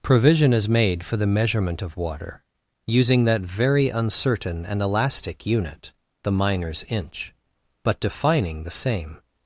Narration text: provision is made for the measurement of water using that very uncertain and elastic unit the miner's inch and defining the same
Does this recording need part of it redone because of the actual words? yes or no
yes